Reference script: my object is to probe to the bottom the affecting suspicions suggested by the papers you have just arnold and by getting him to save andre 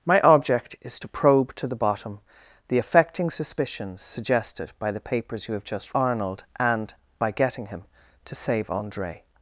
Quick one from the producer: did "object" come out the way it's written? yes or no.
yes